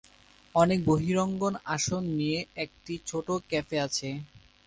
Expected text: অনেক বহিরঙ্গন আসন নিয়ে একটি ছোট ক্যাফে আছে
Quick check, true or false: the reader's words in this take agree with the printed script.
true